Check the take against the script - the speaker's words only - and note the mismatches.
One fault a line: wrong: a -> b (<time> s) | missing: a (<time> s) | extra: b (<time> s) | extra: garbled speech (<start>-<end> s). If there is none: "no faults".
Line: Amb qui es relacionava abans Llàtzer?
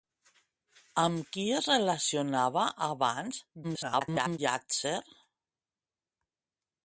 extra: garbled speech (3.6-4.4 s)